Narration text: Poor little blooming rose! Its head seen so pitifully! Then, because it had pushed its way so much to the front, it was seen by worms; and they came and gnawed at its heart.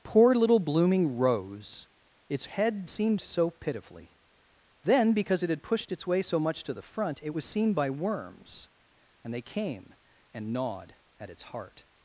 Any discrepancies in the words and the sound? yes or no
no